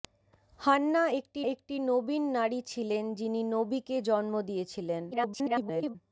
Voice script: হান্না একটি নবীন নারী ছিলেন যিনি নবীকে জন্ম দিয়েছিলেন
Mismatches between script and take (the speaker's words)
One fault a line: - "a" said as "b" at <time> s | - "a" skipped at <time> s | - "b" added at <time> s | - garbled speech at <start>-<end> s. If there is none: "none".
- "একটি" added at 1.5 s
- garbled speech at 5.1-6.0 s